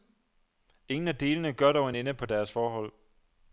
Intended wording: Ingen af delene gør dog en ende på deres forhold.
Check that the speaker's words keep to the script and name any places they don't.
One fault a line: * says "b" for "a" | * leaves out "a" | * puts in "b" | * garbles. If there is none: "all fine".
all fine